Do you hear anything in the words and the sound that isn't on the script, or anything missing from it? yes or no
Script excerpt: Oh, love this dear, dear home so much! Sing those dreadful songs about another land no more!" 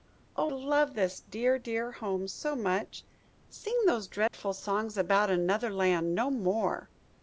yes